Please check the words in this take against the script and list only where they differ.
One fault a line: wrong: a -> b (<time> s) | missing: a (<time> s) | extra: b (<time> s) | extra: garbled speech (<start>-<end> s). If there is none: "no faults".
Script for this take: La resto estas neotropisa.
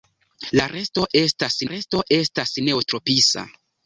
extra: resto estas (1.7 s)